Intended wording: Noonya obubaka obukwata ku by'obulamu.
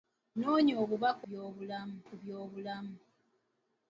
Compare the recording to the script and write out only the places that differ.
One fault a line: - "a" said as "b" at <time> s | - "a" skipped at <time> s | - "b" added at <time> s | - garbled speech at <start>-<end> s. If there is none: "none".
- "obukwata" said as "by'obulamu" at 1.2 s